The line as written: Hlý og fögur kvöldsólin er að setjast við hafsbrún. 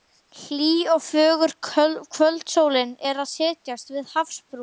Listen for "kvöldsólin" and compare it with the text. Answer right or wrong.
right